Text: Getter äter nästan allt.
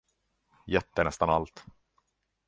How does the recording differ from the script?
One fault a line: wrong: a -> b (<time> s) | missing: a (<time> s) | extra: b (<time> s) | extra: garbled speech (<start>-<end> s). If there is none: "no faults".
missing: äter (1.1 s)